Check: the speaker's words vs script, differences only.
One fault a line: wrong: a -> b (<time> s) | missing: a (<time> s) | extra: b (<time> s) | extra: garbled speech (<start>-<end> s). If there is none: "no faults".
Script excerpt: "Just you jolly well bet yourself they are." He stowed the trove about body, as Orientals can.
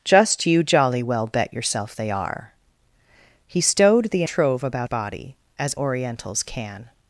no faults